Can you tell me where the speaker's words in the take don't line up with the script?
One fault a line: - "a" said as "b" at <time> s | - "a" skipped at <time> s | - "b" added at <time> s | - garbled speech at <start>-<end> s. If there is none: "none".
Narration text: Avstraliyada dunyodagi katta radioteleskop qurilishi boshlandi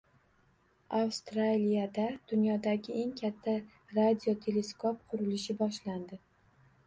- "eng" added at 3.0 s